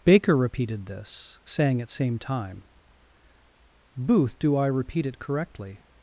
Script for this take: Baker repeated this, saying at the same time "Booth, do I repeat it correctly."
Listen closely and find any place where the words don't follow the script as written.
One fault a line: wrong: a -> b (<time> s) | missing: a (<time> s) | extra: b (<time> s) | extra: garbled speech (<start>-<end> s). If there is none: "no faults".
missing: the (1.9 s)